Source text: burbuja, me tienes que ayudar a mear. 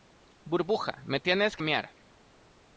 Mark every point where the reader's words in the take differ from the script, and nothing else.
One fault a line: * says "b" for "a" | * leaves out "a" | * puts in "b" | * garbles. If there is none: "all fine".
* leaves out "ayudar"